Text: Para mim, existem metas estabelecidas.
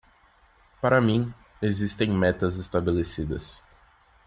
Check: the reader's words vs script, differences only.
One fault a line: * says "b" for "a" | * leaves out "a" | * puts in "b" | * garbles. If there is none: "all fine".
all fine